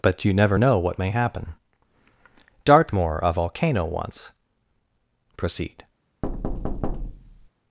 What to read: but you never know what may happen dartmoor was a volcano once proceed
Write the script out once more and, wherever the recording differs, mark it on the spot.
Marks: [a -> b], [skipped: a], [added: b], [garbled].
but you never know what may happen dartmoor [skipped: was] a volcano once proceed